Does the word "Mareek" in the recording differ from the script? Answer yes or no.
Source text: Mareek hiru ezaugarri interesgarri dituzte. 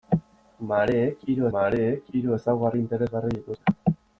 no